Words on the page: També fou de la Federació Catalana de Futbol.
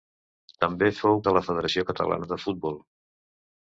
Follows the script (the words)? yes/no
yes